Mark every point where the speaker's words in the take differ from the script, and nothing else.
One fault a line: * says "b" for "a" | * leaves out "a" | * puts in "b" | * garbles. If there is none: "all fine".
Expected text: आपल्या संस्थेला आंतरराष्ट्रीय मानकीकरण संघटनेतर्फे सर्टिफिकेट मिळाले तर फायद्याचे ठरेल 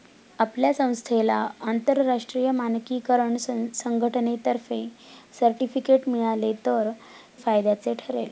all fine